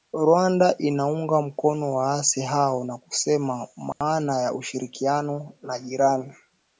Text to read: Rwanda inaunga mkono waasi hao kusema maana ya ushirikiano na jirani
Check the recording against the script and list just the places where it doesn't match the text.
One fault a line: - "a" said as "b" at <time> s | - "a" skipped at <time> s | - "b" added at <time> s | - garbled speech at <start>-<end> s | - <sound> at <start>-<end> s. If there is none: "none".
- "na" added at 2.8 s
- dropout at 3.9-4.0 s